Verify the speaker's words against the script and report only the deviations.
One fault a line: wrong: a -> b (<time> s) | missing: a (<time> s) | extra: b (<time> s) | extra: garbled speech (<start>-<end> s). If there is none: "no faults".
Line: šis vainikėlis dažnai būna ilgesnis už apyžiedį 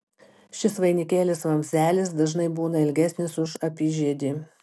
extra: vamzdelis (1.5 s)